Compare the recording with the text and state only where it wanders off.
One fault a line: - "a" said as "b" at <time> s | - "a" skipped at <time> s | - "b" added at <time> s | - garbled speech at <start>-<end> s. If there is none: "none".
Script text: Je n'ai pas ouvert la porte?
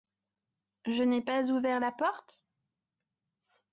none